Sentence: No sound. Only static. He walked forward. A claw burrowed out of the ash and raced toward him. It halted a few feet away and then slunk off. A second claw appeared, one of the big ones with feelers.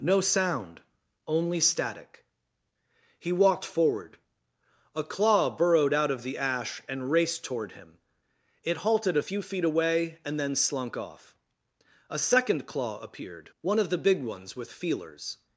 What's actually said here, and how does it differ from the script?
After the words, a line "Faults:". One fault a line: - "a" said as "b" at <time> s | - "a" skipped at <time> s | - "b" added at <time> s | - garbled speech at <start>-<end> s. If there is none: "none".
No sound. Only static. He walked forward. A claw burrowed out of the ash and raced toward him. It halted a few feet away and then slunk off. A second claw appeared, one of the big ones with feelers.
Faults:
none